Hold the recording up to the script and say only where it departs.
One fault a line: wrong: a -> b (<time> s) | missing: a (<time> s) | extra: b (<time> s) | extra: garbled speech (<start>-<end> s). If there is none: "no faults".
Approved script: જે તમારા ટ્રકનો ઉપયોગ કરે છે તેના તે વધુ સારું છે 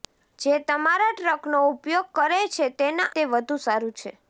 no faults